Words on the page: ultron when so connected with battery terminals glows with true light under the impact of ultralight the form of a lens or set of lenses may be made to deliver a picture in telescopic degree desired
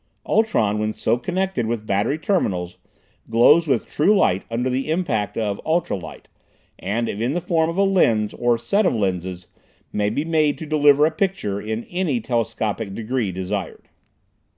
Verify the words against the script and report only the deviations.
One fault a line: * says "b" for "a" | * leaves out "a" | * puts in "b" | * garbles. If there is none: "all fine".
* puts in "and if in"
* puts in "any"